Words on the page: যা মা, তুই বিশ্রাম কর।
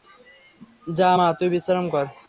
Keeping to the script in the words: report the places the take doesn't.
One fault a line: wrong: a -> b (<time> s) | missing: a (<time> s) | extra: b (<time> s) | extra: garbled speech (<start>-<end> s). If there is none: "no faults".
no faults